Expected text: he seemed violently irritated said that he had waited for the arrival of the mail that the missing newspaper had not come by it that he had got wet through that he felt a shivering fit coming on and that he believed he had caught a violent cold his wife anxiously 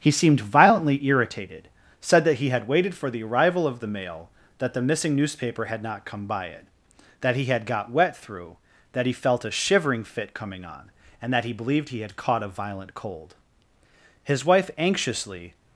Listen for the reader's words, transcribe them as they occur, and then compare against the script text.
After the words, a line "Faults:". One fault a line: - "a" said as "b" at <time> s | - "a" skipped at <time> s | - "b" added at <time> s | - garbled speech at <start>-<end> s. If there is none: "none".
he seemed violently irritated said that he had waited for the arrival of the mail that the missing newspaper had not come by it that he had got wet through that he felt a shivering fit coming on and that he believed he had caught a violent cold his wife anxiously
Faults:
none